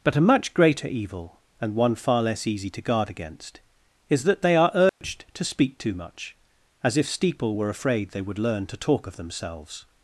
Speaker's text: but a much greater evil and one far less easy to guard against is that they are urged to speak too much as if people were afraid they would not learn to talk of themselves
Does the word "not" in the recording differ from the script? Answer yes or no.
yes